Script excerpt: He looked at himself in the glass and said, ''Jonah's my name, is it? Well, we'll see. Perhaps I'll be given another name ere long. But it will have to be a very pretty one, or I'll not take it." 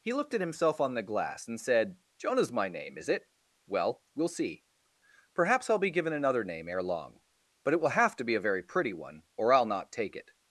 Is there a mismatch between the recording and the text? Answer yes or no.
yes